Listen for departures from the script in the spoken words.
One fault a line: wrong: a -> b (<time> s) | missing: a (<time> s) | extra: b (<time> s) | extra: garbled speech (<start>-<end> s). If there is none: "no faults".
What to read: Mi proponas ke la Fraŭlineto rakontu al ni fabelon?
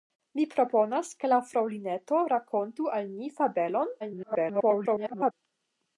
extra: garbled speech (4.0-5.3 s)